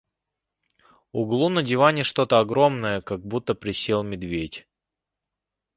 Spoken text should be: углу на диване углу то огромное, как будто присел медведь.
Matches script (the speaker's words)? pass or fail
fail